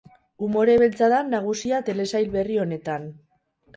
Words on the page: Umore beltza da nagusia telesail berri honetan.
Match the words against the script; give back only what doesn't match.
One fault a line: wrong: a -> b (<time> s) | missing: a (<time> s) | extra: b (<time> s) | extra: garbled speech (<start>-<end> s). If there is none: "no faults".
no faults